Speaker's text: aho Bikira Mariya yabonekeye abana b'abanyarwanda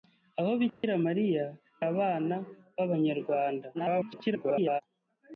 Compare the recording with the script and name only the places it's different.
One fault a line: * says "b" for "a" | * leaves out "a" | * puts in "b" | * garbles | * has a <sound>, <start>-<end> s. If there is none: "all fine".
* has a dropout, 0.7-0.8 s
* leaves out "yabonekeye"
* garbles